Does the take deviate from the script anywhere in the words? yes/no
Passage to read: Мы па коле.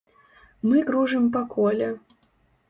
yes